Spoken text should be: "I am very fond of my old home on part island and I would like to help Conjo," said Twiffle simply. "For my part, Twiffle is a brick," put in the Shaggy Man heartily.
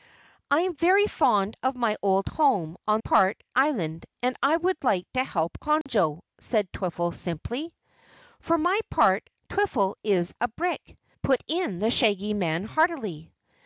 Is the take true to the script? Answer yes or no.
yes